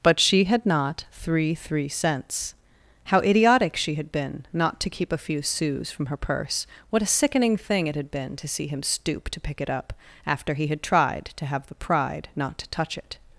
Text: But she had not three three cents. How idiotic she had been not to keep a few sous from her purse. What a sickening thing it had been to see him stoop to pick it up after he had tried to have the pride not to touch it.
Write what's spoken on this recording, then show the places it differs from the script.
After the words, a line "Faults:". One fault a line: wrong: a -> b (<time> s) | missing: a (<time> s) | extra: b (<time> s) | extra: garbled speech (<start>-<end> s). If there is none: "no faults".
But she had not three three cents. How idiotic she had been not to keep a few sous from her purse. What a sickening thing it had been to see him stoop to pick it up after he had tried to have the pride not to touch it.
Faults:
no faults